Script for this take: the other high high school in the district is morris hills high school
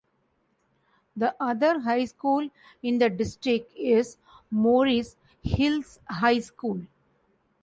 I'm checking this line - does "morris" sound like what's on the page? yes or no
yes